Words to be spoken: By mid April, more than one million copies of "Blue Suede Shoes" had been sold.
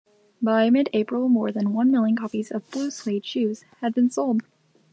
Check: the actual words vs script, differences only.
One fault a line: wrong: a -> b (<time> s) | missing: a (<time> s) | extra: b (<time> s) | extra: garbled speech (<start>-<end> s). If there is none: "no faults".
no faults